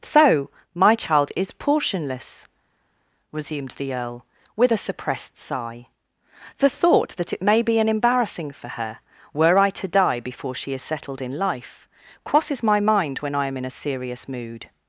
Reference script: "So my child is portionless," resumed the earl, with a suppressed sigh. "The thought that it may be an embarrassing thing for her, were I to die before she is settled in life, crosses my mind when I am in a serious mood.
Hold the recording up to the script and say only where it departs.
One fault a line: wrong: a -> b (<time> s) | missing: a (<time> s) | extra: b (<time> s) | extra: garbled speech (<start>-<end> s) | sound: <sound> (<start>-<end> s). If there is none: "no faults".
missing: thing (8.5 s)